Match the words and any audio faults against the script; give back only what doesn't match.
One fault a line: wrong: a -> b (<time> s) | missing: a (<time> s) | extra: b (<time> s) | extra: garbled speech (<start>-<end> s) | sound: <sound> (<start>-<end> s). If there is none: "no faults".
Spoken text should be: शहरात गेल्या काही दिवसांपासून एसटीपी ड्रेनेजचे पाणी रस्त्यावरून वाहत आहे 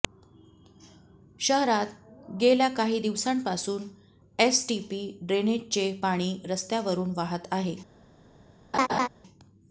sound: laugh (8.7-9.1 s)